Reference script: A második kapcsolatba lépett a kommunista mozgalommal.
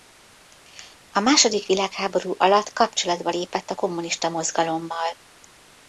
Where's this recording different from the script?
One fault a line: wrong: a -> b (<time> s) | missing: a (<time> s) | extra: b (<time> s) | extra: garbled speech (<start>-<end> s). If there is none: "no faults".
extra: világháború alatt (1.7 s)